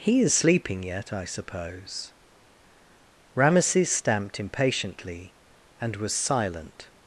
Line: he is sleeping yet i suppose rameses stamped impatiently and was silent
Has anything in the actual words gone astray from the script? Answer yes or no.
no